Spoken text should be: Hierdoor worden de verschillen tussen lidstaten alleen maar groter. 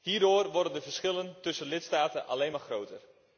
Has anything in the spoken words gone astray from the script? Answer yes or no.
no